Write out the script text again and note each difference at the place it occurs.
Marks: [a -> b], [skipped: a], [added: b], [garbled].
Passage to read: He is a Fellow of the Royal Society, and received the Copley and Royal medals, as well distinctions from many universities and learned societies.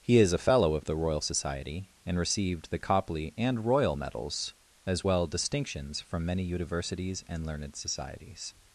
He is a Fellow of the Royal Society, and received the Copley and Royal medals, as well distinctions from many universities and learned societies.